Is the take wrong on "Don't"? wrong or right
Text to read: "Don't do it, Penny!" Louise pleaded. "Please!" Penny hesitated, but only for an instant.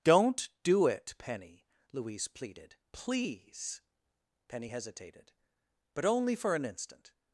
right